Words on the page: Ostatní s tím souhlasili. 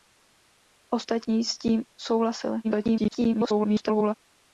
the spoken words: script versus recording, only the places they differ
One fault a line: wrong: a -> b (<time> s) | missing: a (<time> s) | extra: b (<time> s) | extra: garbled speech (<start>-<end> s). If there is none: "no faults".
extra: garbled speech (2.6-4.1 s)